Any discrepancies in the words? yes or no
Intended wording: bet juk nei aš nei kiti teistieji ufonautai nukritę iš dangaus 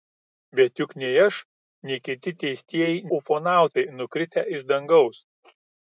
no